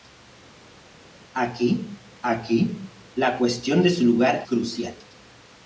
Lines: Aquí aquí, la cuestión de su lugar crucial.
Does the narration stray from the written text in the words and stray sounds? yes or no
no